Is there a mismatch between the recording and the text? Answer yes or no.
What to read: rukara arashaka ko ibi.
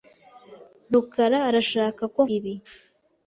no